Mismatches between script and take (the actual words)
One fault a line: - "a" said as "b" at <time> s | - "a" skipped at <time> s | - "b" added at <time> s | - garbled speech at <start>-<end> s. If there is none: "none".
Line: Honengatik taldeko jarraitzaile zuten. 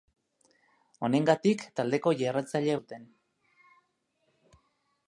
none